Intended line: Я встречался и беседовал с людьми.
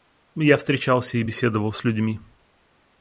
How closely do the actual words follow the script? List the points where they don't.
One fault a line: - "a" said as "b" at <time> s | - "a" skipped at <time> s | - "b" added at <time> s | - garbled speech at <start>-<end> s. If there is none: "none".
none